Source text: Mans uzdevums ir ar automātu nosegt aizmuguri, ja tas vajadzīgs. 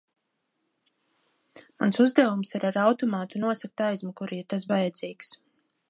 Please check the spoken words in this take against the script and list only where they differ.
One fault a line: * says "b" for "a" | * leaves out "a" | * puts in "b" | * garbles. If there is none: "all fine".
all fine